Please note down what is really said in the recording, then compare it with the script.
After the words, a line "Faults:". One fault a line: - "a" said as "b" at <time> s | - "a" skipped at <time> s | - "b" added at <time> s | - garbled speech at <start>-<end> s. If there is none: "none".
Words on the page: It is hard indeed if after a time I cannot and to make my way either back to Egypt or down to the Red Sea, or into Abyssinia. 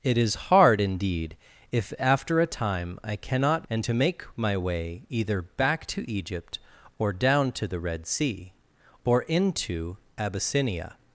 It is hard indeed if after a time I cannot and to make my way either back to Egypt or down to the Red Sea, or into Abyssinia.
Faults:
none